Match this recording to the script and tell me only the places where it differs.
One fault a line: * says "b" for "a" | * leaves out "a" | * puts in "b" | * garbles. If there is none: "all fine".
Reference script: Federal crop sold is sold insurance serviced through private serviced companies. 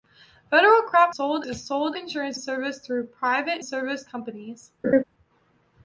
all fine